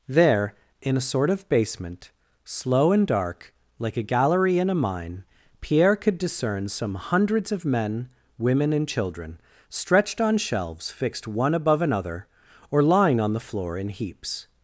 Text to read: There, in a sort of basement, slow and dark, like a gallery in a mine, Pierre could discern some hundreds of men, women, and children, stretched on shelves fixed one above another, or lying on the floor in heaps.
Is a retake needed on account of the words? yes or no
no